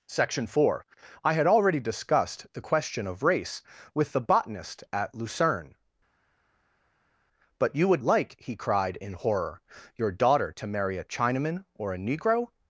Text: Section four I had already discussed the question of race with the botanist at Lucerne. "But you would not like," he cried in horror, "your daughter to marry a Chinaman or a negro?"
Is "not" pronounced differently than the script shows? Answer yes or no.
yes